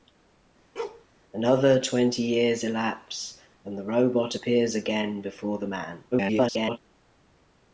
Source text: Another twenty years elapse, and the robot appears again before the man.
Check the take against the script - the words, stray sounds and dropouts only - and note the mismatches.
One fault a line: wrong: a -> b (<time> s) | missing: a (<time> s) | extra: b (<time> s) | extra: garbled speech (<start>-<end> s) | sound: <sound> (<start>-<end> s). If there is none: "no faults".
sound: bark (0.8-1.1 s)
extra: garbled speech (6.1-6.8 s)